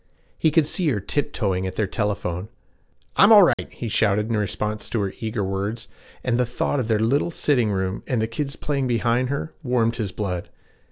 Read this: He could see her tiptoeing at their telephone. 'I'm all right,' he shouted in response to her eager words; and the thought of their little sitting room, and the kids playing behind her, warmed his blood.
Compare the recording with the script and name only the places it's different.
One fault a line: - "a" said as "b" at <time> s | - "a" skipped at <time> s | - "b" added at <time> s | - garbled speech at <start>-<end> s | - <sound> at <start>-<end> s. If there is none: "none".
- dropout at 3.5-3.6 s